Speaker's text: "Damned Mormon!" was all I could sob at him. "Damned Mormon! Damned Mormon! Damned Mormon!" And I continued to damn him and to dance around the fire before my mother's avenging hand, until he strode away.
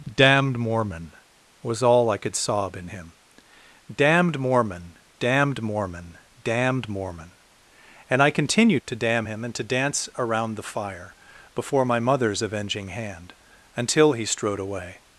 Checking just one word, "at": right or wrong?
wrong